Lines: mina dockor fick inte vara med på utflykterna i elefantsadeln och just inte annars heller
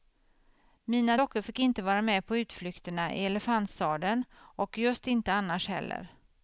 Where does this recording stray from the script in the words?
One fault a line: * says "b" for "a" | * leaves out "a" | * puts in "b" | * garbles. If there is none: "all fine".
all fine